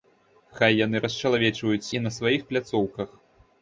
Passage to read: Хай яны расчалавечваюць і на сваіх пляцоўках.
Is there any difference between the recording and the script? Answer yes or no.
no